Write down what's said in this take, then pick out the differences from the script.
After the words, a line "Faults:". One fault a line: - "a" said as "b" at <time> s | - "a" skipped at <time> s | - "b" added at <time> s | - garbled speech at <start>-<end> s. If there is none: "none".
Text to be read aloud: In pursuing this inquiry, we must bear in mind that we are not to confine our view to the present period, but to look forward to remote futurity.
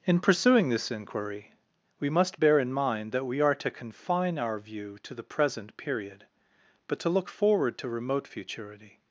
In pursuing this inquiry, we must bear in mind that we are to confine our view to the present period, but to look forward to remote futurity.
Faults:
- "not" skipped at 3.5 s